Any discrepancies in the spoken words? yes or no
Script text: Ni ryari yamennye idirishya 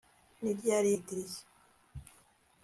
yes